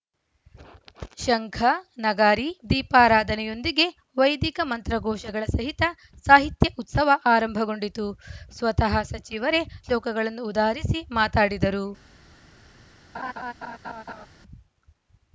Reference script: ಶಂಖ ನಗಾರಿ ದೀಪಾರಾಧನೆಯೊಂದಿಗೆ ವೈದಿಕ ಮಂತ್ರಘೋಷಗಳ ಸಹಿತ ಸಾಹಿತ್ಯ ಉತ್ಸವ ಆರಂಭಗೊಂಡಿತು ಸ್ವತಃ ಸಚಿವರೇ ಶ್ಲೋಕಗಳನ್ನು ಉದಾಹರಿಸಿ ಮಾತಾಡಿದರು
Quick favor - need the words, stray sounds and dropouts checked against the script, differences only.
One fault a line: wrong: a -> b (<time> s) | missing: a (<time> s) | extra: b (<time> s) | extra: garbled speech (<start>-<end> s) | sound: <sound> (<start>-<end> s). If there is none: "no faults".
sound: laugh (13.1-14.3 s)